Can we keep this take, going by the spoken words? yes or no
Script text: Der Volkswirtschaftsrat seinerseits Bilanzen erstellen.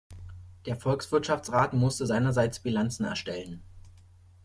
no